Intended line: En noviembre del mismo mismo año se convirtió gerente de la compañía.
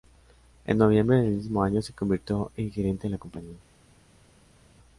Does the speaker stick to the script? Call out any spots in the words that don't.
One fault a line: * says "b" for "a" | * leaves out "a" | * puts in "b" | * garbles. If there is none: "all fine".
* leaves out "mismo"
* puts in "en"